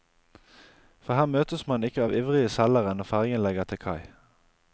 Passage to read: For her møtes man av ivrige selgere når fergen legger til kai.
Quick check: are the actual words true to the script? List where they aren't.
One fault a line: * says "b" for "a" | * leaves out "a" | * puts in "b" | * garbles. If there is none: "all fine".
* puts in "ikke"